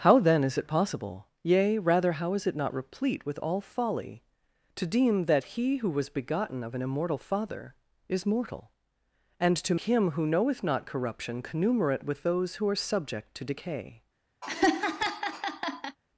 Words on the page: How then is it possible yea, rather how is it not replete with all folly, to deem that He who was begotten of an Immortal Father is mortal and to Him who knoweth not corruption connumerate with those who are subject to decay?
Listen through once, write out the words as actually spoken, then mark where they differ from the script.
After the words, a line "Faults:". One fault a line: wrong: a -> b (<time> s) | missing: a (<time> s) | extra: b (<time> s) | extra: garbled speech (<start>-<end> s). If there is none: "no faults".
How then is it possible yea, rather how is it not replete with all folly, to deem that He who was begotten of an Immortal Father is mortal and to Him who knoweth not corruption connumerate with those who are subject to decay?
Faults:
no faults